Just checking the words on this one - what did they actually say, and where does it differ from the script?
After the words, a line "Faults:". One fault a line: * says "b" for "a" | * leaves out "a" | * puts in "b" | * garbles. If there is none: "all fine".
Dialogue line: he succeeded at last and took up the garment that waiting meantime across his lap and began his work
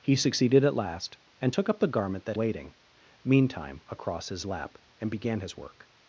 he succeeded at last and took up the garment that waiting meantime across his lap and began his work
Faults:
all fine